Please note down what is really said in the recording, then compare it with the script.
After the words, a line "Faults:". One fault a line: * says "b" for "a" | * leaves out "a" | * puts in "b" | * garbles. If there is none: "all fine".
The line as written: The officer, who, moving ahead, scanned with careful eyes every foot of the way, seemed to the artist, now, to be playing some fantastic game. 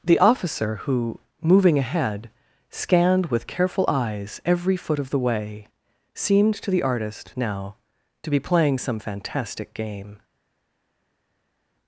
The officer, who, moving ahead, scanned with careful eyes every foot of the way, seemed to the artist, now, to be playing some fantastic game.
Faults:
all fine